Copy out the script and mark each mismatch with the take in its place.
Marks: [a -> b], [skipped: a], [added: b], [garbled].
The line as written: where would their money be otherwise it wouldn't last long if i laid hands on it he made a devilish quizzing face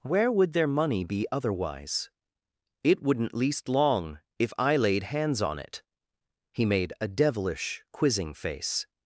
where would their money be otherwise it wouldn't [last -> least] long if i laid hands on it he made a devilish quizzing face